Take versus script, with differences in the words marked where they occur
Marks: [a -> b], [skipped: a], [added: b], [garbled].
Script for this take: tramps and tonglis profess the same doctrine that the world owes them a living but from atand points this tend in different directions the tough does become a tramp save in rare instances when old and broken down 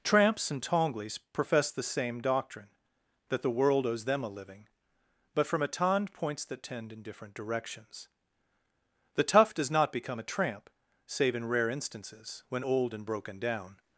tramps and tonglis profess the same doctrine that the world owes them a living but from atand points [this -> that] tend in different directions the tough does [added: not] become a tramp save in rare instances when old and broken down